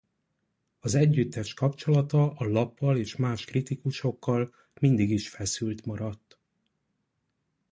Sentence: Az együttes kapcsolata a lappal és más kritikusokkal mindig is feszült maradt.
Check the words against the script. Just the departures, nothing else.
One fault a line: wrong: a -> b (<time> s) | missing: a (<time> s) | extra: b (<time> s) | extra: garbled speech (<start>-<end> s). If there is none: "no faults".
no faults